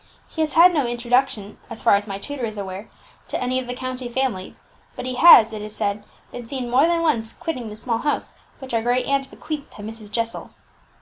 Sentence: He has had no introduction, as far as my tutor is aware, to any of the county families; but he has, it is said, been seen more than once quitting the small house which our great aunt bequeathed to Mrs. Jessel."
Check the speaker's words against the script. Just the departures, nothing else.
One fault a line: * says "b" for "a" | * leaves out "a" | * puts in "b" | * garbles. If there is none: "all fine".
all fine